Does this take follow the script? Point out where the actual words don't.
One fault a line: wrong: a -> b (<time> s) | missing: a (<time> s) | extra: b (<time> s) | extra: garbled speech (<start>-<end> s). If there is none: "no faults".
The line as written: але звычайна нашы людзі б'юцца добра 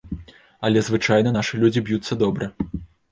no faults